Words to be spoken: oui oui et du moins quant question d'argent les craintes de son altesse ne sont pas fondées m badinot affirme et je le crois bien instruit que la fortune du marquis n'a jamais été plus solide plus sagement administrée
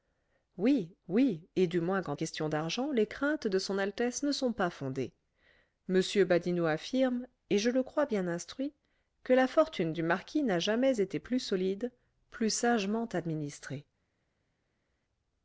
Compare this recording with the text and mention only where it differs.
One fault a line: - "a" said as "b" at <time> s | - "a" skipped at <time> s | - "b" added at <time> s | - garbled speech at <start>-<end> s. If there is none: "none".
none